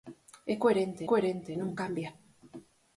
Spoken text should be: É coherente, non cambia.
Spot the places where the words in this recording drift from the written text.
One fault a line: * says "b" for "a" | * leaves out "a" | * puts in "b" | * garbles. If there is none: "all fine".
* puts in "coherente"